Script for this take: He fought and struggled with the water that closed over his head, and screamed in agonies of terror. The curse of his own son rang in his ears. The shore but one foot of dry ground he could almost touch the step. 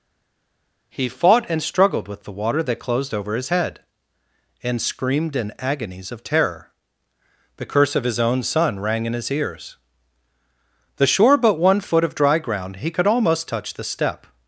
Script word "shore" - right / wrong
right